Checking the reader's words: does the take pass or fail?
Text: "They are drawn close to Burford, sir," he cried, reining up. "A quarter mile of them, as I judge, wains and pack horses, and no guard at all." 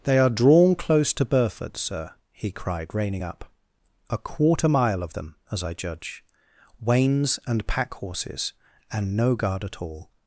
pass